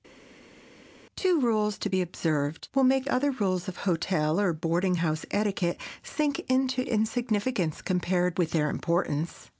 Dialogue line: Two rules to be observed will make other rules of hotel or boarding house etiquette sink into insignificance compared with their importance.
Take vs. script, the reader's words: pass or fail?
pass